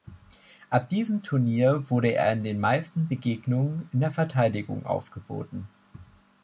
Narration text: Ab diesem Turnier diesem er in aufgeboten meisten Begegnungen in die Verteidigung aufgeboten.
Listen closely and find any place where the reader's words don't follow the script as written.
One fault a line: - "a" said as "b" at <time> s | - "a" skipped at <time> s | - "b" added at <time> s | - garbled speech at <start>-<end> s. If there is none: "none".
- "diesem" said as "wurde" at 1.9 s
- "aufgeboten" said as "den" at 2.4 s
- "die" said as "der" at 4.0 s